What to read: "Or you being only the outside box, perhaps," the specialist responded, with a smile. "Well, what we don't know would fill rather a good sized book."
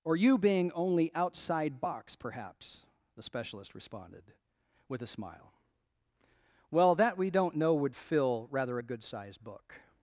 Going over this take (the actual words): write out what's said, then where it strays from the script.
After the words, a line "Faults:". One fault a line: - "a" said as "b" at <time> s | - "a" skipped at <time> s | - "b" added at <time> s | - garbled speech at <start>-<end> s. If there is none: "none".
"Or you being only outside box, perhaps," the specialist responded, with a smile. "Well, that we don't know would fill rather a good sized book."
Faults:
- "the" skipped at 1.1 s
- "what" said as "that" at 7.0 s